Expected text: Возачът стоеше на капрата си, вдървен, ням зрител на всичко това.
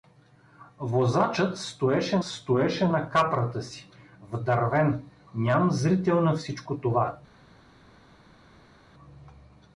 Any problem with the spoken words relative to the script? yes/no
yes